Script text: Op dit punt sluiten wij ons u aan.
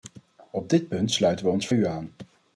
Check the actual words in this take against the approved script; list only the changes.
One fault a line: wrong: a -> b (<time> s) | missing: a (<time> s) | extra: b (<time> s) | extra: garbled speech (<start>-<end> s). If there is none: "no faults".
no faults